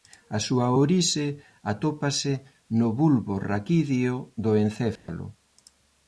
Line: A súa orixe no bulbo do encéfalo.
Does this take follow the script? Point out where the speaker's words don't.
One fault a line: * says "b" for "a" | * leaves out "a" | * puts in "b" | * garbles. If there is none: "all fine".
* puts in "atópase"
* puts in "raquídeo"